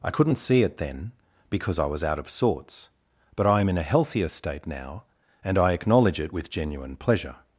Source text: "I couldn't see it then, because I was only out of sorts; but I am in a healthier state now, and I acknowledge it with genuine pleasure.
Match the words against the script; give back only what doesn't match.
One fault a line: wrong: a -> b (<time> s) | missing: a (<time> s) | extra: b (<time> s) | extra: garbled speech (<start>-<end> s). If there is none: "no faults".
missing: only (2.0 s)